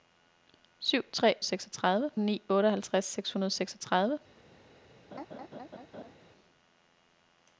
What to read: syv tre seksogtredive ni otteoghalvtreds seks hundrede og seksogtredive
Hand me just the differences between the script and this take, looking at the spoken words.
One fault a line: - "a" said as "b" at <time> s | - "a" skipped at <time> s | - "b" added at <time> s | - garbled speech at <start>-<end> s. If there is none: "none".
none